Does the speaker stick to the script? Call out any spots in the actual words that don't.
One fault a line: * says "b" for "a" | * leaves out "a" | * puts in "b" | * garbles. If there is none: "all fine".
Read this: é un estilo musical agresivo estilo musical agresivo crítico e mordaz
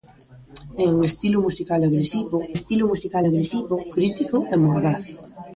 all fine